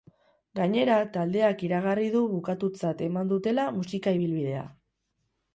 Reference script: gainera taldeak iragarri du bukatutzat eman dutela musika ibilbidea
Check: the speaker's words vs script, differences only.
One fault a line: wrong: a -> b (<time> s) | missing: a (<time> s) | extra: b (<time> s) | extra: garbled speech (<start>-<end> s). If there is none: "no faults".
no faults